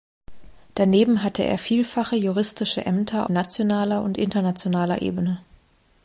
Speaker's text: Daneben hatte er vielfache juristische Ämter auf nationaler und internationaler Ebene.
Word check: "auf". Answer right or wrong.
wrong